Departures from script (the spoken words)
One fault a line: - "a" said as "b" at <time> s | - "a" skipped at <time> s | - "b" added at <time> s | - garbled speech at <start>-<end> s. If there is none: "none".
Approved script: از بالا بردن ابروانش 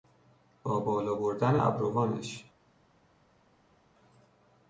- "از" said as "با" at 0.6 s